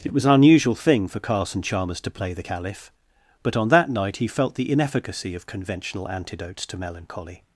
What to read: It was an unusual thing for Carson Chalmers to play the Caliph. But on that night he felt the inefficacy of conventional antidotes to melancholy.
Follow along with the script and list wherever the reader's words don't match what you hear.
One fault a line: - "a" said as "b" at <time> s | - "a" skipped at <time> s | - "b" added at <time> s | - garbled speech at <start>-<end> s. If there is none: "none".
none